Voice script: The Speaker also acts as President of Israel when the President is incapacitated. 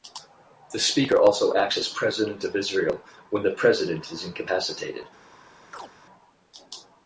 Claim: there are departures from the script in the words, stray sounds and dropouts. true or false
true